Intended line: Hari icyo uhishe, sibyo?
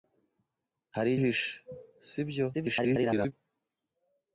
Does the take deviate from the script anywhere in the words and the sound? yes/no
yes